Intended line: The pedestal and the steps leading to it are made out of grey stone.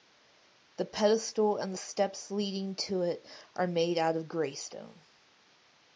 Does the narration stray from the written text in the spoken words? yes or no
no